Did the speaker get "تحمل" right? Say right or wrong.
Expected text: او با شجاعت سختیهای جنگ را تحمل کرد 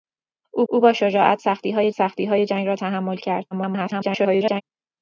right